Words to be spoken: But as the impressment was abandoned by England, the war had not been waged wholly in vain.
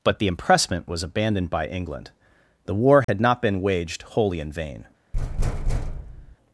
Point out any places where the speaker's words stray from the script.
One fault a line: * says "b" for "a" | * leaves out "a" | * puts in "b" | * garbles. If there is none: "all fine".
* leaves out "as"